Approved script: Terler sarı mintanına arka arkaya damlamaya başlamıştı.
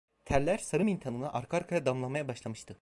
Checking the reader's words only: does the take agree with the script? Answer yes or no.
yes